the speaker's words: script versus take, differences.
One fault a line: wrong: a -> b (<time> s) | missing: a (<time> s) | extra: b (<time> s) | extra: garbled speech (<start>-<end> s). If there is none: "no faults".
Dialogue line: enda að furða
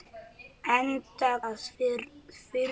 no faults